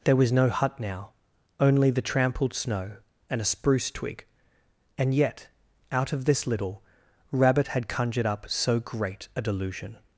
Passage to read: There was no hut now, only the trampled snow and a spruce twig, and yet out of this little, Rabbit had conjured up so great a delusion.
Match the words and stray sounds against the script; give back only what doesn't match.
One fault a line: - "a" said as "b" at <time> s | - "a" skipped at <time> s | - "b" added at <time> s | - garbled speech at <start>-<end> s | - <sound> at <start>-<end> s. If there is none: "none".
none